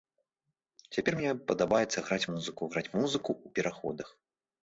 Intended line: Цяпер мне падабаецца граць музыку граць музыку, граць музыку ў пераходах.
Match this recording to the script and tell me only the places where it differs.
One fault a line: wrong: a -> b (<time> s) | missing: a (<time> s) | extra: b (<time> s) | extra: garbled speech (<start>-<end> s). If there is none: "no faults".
missing: граць музыку (3.3 s)